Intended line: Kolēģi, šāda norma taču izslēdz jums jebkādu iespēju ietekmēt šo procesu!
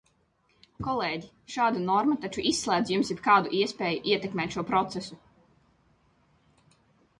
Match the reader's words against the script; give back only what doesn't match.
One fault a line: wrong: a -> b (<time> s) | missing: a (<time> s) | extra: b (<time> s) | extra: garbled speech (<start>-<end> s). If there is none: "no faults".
no faults